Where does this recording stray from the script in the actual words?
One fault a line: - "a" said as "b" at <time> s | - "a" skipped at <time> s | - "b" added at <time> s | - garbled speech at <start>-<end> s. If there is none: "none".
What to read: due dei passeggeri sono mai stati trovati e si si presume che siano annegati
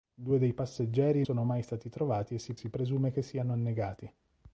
none